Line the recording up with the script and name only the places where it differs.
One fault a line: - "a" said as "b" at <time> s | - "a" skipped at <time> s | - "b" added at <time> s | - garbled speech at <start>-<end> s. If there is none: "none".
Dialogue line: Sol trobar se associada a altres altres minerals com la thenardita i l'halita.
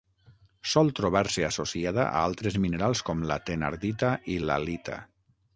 - "altres" skipped at 2.6 s